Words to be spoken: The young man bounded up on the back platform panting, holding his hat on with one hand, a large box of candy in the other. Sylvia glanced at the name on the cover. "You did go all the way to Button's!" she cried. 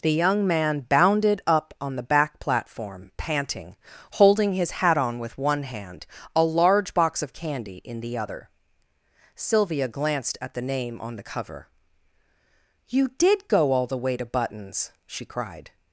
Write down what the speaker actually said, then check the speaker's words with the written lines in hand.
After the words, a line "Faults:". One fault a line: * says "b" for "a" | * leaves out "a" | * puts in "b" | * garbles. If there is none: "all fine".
The young man bounded up on the back platform panting, holding his hat on with one hand, a large box of candy in the other. Sylvia glanced at the name on the cover. "You did go all the way to Button's!" she cried.
Faults:
all fine